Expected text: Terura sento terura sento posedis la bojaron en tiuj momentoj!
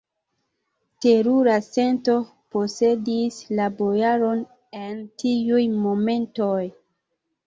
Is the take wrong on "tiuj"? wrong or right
right